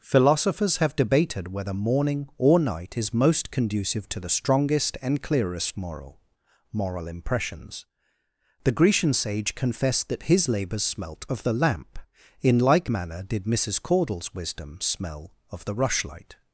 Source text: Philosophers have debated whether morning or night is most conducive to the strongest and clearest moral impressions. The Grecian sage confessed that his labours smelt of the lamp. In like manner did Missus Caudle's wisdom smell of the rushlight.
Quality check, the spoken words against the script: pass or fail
fail